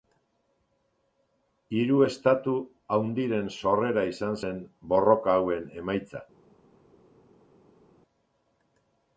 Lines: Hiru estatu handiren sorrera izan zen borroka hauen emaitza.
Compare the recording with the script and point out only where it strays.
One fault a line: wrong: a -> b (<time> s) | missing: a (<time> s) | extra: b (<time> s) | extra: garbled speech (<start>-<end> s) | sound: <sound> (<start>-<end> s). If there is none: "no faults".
no faults